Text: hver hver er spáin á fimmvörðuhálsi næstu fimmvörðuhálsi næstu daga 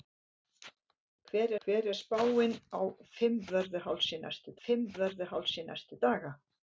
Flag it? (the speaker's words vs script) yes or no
no